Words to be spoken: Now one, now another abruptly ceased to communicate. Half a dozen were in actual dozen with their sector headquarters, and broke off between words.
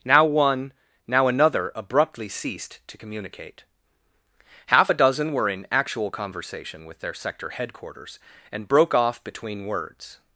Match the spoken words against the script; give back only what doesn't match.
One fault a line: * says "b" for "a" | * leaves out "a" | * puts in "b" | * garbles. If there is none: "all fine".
* says "conversation" for "dozen"